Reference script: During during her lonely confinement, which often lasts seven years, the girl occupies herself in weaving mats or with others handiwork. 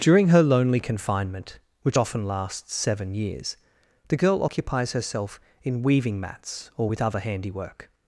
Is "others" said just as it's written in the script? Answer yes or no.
no